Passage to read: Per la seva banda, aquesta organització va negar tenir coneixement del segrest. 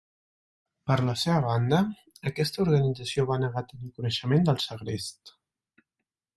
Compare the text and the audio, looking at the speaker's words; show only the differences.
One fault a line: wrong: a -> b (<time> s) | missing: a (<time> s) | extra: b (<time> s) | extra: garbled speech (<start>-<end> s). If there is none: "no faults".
no faults